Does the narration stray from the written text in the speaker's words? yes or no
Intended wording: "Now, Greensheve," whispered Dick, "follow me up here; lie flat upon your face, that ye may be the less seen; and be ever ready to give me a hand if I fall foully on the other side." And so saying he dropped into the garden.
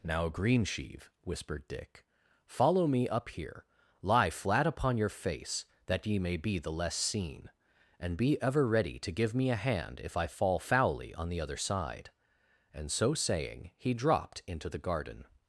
no